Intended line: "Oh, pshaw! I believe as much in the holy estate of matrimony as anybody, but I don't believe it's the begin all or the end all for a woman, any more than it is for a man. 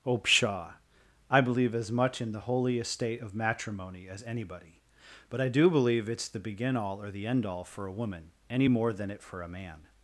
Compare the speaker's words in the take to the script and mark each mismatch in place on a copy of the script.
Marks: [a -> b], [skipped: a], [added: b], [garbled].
"Oh, pshaw! I believe as much in the holy estate of matrimony as anybody, but I [don't -> do] believe it's the begin all or the end all for a woman, any more than it [skipped: is] for a man.